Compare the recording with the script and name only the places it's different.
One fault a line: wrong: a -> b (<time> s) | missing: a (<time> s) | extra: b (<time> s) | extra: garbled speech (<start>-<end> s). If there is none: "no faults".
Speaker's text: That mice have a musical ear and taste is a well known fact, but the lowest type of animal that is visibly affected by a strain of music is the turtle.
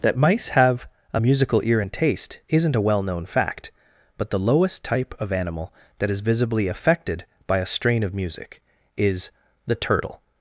wrong: is -> isn't (2.5 s)